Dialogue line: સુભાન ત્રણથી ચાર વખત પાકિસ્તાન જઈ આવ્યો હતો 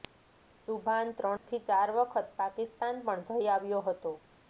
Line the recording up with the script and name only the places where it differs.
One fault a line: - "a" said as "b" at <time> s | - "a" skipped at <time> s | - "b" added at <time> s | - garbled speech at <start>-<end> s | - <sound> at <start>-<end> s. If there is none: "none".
- dropout at 1.4-1.5 s
- "પણ" added at 3.1 s